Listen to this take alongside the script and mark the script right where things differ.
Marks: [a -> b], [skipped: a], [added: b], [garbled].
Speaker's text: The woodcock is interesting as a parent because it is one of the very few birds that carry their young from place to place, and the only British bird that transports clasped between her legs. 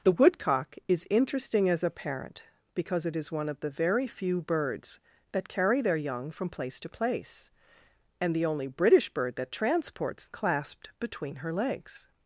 The woodcock is interesting as a parent because it is one of the very few birds that carry their young from place to place, and the only British bird that transports clasped between her legs.